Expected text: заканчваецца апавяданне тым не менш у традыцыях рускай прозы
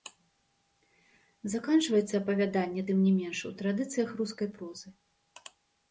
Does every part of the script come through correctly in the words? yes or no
yes